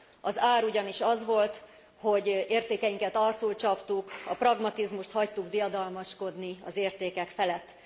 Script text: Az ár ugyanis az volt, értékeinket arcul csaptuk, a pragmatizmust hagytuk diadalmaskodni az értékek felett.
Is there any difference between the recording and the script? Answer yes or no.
yes